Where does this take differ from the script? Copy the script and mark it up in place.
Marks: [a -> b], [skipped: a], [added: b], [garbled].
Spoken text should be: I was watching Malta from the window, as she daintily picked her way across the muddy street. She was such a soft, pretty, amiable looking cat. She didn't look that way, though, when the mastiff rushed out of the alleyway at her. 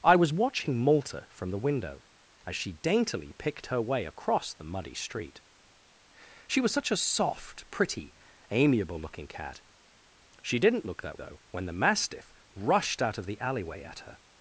I was watching Malta from the window, as she daintily picked her way across the muddy street. She was such a soft, pretty, amiable looking cat. She didn't look that [skipped: way,] though, when the mastiff rushed out of the alleyway at her.